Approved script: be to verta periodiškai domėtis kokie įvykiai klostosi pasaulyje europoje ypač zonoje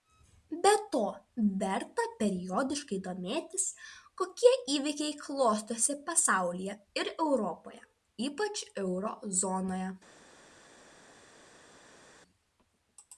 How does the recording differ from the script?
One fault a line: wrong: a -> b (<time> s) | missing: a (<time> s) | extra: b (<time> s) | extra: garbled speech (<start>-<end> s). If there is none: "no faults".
extra: ir (7.0 s)
extra: euro (8.9 s)